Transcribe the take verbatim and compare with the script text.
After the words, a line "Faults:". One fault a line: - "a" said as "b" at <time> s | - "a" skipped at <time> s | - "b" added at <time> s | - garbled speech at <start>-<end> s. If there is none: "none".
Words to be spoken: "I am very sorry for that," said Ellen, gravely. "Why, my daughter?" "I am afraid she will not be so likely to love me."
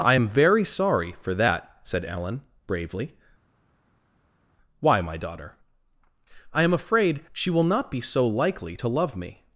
"I am very sorry for that," said Ellen, bravely. "Why, my daughter?" "I am afraid she will not be so likely to love me."
Faults:
- "gravely" said as "bravely" at 2.7 s